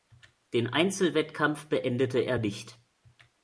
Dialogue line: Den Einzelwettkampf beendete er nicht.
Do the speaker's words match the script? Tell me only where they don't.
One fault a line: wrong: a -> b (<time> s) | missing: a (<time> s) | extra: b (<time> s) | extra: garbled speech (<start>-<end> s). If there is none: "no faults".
no faults